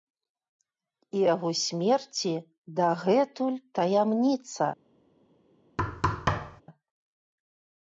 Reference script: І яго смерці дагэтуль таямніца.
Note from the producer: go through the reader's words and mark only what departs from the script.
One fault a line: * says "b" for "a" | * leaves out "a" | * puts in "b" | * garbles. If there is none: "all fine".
all fine